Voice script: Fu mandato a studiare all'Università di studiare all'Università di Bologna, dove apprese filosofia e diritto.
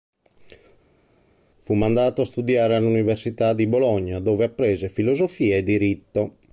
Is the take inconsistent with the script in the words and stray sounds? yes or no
yes